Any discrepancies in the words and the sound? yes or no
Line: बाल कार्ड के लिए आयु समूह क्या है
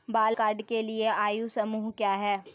no